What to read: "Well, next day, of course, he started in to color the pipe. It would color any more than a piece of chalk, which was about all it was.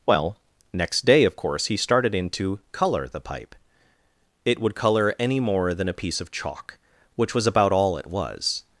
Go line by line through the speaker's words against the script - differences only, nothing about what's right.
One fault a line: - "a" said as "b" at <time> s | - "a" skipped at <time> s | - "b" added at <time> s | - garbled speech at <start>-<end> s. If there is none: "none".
none